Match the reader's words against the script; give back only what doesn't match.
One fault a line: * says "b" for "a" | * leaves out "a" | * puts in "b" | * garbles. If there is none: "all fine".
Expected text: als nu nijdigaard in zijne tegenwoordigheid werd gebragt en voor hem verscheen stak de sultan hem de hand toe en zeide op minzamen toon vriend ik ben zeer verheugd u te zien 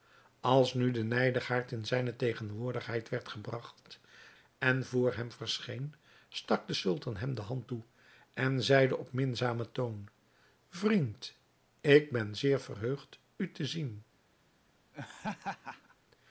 * puts in "de"